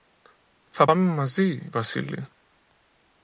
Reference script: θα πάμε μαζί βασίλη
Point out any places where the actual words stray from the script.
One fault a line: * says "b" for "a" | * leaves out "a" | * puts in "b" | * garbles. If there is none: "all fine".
all fine